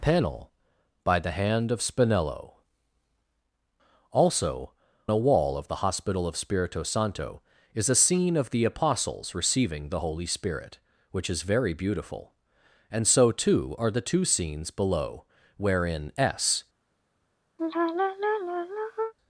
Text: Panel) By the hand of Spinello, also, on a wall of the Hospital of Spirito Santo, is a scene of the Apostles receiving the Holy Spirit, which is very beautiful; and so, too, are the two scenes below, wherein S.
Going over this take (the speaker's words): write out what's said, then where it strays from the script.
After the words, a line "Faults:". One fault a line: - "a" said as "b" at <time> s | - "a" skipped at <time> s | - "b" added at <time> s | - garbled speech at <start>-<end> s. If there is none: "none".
Panel) By the hand of Spinello, also, a wall of the Hospital of Spirito Santo, is a scene of the Apostles receiving the Holy Spirit, which is very beautiful; and so, too, are the two scenes below, wherein S.
Faults:
- "on" skipped at 4.7 s